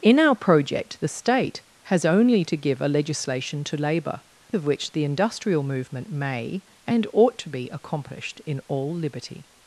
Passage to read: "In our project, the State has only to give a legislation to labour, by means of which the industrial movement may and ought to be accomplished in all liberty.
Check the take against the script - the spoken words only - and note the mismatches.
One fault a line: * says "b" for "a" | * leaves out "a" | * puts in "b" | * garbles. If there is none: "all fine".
* leaves out "by means"